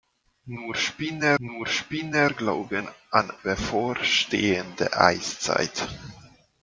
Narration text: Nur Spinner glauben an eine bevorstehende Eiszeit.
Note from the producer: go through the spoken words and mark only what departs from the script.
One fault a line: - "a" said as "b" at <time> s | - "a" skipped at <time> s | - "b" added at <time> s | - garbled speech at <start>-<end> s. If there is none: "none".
- "nur Spinner" added at 1.4 s
- "eine" skipped at 3.3 s